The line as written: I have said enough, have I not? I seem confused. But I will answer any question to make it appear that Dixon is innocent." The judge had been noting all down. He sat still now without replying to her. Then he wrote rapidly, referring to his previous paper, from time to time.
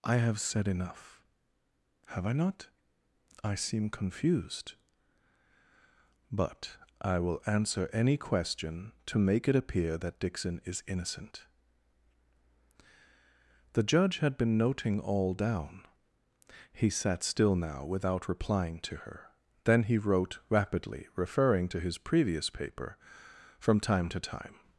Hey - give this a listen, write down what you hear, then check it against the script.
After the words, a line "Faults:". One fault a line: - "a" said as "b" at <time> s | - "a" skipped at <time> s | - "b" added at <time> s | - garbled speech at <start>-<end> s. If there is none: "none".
I have said enough, have I not? I seem confused. But I will answer any question to make it appear that Dixon is innocent." The judge had been noting all down. He sat still now without replying to her. Then he wrote rapidly, referring to his previous paper, from time to time.
Faults:
none